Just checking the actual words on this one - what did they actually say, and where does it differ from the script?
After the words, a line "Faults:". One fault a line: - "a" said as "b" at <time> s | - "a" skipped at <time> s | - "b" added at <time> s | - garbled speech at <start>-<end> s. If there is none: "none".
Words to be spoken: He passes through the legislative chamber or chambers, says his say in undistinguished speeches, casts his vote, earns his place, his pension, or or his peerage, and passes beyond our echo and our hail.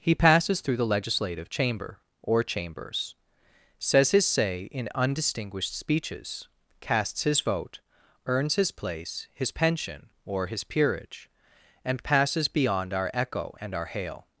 He passes through the legislative chamber or chambers, says his say in undistinguished speeches, casts his vote, earns his place, his pension, or his peerage, and passes beyond our echo and our hail.
Faults:
- "or" skipped at 10.5 s